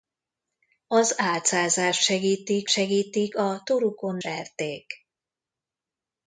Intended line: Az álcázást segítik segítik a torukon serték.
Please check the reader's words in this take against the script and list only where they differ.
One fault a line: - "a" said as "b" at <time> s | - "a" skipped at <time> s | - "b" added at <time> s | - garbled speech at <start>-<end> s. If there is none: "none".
none